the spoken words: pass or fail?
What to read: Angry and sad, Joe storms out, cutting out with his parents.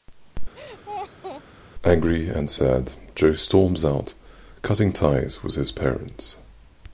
fail